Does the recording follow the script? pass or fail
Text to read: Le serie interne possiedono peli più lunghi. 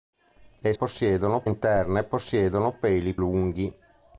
fail